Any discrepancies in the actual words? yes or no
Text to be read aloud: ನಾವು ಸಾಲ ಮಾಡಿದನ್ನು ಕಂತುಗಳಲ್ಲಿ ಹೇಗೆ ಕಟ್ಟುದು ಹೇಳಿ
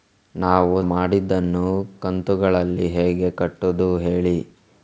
yes